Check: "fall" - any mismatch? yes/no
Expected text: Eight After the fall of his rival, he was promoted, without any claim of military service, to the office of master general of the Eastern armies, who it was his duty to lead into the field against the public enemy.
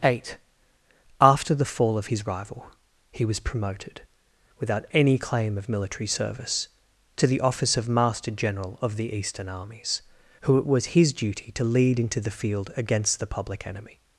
no